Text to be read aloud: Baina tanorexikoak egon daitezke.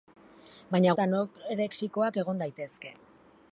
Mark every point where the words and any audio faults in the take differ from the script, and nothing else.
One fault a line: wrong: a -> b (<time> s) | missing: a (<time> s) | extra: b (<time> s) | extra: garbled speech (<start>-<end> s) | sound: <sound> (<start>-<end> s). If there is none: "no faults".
no faults